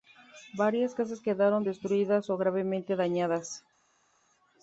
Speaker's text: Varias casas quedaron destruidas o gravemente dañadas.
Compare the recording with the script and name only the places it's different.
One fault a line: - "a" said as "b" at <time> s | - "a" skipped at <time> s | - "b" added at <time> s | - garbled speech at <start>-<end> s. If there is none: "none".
none